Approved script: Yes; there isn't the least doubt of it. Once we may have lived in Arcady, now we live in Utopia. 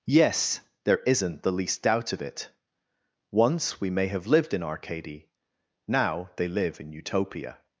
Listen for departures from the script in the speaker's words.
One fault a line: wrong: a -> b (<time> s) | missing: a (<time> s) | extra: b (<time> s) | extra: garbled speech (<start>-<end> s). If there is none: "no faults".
wrong: we -> they (6.3 s)